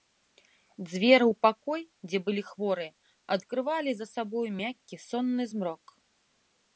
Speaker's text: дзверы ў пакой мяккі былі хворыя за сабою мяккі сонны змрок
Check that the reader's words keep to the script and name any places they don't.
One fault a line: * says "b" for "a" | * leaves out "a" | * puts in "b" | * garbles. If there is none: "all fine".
* says "дзе" for "мяккі"
* puts in "адкрывалі"